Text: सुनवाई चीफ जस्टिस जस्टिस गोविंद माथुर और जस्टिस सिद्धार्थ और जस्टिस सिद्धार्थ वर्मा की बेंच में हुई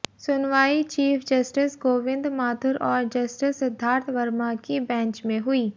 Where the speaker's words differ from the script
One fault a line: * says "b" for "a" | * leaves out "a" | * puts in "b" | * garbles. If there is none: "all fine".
* leaves out "जस्टिस"
* leaves out "और जस्टिस सिद्धार्थ"